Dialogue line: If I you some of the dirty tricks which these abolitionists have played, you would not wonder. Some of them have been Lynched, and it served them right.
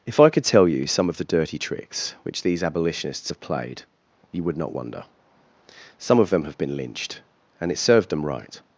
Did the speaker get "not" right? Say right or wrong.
right